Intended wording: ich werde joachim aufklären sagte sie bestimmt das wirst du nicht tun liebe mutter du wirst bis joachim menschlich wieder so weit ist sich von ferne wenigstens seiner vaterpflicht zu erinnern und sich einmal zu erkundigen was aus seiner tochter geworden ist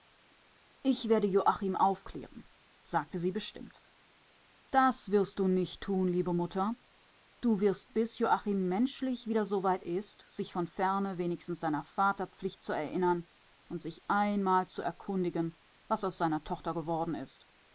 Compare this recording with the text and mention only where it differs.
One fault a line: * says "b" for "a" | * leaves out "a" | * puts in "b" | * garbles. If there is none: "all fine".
all fine